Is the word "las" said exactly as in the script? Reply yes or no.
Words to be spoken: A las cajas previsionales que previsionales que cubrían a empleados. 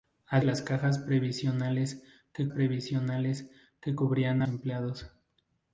yes